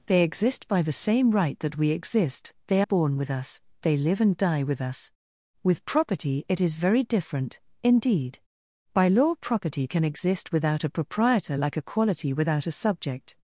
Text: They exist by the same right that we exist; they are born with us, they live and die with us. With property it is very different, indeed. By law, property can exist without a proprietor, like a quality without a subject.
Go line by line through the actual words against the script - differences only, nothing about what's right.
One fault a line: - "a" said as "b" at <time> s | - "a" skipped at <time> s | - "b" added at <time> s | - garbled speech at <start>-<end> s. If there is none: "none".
- "are" skipped at 2.8 s